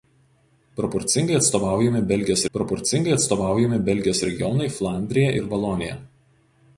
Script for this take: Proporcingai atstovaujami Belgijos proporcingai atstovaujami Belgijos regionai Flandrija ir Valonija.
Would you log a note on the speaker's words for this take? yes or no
no